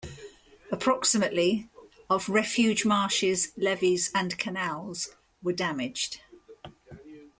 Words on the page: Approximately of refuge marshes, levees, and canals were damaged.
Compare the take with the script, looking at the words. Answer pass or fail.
pass